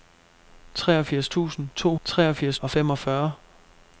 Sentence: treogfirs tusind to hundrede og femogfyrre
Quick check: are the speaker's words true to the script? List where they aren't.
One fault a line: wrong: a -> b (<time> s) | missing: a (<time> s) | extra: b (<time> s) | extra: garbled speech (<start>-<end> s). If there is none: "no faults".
wrong: hundrede -> treogfirs (2.0 s)